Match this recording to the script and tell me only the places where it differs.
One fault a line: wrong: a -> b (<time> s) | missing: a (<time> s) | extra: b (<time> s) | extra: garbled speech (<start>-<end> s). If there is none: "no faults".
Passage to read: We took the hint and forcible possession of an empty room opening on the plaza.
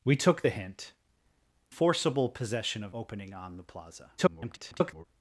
missing: and (0.9 s)
missing: an empty room (2.9 s)
extra: garbled speech (4.2-5.0 s)